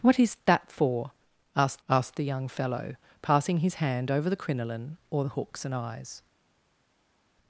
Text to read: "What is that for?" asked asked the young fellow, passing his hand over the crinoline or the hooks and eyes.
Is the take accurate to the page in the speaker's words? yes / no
yes